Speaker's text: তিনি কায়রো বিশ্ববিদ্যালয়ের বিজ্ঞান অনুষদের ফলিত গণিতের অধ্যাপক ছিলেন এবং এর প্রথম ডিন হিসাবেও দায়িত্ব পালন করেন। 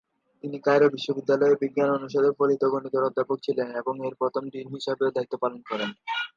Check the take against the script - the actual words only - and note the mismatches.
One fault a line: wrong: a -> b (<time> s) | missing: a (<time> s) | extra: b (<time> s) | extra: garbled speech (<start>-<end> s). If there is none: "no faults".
no faults